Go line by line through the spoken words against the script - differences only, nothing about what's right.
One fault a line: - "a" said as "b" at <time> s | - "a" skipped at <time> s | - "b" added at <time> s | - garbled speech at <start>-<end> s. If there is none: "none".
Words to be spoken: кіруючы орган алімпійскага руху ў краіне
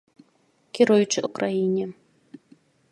- "орган алімпійскага руху" skipped at 1.2 s